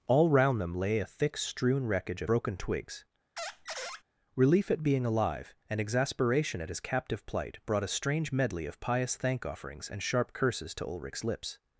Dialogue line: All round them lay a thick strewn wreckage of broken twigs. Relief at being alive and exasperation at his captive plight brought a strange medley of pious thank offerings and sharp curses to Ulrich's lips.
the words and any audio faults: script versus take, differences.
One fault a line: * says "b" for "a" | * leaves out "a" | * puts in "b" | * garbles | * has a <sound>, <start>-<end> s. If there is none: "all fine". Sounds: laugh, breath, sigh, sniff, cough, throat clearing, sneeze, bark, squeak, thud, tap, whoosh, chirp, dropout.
* has a squeak, 3.4-4.0 s